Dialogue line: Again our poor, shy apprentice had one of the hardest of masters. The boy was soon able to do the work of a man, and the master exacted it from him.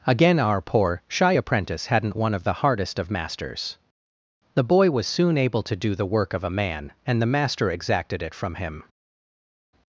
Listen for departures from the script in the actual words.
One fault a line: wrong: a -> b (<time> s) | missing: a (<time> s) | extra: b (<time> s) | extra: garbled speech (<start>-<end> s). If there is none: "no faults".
wrong: had -> hadn't (1.9 s)